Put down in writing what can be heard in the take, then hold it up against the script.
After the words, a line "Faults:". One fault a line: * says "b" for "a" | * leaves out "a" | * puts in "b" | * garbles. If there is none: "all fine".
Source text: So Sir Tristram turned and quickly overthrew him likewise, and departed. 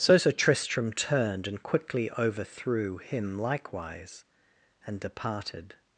So Sir Tristram turned and quickly overthrew him likewise, and departed.
Faults:
all fine